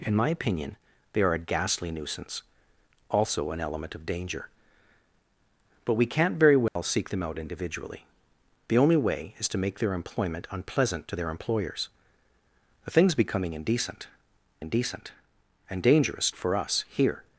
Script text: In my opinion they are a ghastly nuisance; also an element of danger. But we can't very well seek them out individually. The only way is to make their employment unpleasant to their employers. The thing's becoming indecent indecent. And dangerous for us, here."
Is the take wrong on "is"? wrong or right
right